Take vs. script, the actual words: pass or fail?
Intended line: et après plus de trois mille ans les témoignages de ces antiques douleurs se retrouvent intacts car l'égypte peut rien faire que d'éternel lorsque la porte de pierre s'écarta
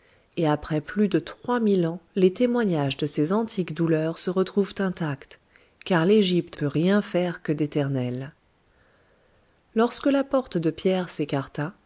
pass